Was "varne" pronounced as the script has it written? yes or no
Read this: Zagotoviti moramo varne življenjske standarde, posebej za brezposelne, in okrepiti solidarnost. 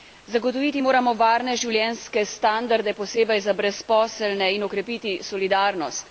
yes